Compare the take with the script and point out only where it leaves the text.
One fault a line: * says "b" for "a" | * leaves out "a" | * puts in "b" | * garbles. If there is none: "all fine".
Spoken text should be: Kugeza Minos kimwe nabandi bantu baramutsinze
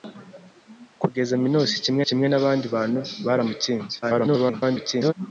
* puts in "kimwe"
* garbles